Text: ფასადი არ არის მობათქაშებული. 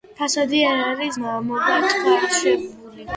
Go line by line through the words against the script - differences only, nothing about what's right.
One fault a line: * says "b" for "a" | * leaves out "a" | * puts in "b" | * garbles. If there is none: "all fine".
all fine